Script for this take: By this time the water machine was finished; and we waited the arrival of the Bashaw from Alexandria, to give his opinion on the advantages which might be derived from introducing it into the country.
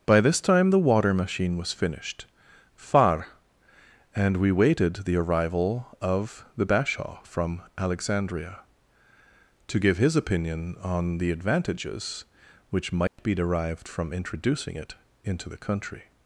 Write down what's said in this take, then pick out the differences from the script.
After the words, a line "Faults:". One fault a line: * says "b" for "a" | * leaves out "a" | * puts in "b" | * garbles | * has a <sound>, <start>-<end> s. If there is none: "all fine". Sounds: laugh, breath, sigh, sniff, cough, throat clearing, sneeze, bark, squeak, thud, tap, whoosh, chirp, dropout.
By this time the water machine was finished; far and we waited the arrival of the Bashaw from Alexandria, to give his opinion on the advantages which might be derived from introducing it into the country.
Faults:
* puts in "far"
* has a dropout, 13.1-13.2 s